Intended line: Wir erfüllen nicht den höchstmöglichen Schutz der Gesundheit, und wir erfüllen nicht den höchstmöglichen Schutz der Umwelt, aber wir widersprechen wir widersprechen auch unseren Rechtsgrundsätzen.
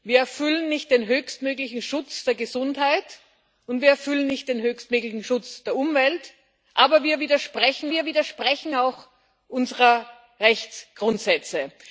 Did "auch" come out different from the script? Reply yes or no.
no